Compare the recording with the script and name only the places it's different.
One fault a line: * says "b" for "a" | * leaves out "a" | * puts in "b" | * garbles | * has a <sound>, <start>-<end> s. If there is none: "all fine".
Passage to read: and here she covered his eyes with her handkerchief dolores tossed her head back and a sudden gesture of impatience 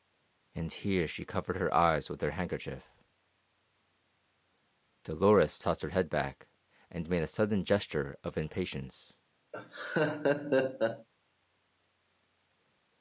* says "her" for "his"
* puts in "made"
* has a laugh, 9.5-11.1 s